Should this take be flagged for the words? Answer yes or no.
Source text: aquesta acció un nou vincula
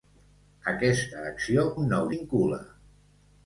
no